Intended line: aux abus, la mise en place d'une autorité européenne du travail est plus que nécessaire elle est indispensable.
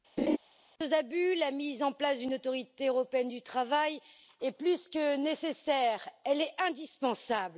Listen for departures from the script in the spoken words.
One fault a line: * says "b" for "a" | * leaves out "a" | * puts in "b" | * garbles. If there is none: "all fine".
all fine